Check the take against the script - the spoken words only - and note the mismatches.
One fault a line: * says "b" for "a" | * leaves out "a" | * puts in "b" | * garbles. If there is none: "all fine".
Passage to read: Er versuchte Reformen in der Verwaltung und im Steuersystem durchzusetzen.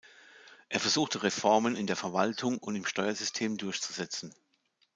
all fine